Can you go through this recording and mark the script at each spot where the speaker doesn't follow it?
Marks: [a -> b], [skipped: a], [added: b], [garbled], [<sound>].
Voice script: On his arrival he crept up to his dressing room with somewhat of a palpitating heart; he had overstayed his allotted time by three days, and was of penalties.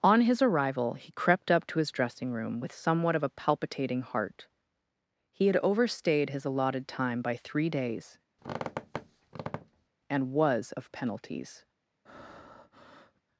On his arrival he crept up to his dressing room with somewhat of a palpitating heart; he had overstayed his allotted time by three days, [squeak] and was of penalties. [breath]